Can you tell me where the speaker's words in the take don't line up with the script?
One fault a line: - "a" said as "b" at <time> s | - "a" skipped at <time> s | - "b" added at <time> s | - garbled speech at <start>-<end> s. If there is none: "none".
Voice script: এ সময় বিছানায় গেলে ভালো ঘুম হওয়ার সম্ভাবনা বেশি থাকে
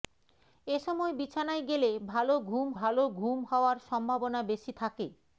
- "ভালো ঘুম" added at 2.8 s